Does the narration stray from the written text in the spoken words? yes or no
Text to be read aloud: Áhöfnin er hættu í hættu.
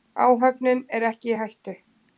yes